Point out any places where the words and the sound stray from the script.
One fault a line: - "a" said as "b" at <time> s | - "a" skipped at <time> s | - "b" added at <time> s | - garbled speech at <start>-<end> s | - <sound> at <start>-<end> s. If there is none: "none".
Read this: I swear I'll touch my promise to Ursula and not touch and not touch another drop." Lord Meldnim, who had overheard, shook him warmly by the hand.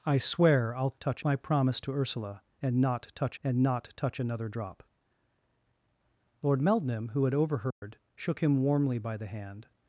- dropout at 7.7-7.8 s